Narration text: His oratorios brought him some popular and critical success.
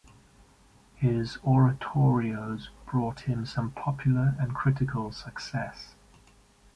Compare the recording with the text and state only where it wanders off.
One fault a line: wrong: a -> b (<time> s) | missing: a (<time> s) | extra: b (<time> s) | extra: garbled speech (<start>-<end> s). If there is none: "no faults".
no faults